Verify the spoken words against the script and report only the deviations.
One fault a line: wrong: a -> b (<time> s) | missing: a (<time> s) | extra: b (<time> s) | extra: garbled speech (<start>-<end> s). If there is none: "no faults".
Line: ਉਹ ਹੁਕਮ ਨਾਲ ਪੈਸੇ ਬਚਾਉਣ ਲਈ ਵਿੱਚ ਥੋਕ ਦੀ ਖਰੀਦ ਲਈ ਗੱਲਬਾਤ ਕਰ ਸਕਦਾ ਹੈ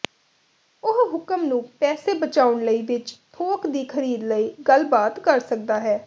wrong: ਨਾਲ -> ਨੂੰ (1.4 s)